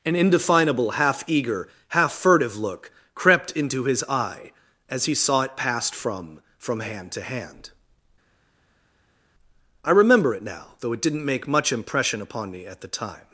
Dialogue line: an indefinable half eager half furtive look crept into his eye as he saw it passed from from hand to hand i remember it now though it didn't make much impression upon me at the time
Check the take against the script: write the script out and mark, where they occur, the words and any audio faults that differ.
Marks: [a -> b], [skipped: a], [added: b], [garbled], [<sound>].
an indefinable half eager half furtive look crept into his eye as he saw it passed from from hand to hand i remember it now though it didn't make much impression upon me at the time